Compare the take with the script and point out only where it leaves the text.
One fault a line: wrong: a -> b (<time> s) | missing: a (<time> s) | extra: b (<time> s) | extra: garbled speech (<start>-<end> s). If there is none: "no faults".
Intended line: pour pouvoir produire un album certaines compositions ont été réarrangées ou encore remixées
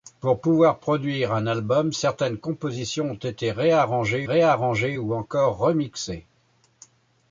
extra: réarrangées (4.2 s)